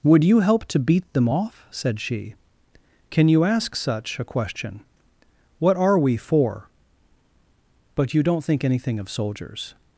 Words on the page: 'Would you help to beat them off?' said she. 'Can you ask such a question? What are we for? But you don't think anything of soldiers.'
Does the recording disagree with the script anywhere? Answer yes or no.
no